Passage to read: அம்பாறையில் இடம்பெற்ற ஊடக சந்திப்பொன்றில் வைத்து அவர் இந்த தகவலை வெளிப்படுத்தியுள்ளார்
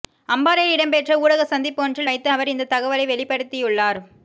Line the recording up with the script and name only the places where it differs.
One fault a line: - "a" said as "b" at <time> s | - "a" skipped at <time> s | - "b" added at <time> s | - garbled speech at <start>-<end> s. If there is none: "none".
none